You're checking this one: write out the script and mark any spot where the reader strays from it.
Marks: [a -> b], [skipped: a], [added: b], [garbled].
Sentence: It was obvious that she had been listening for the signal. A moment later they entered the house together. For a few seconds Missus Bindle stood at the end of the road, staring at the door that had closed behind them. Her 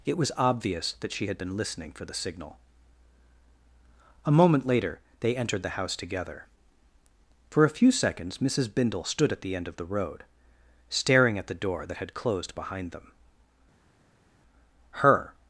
It was obvious that she had been listening for the signal. A moment later they entered the house together. For a few seconds Missus Bindle stood at the end of the road, staring at the door that had closed behind them. Her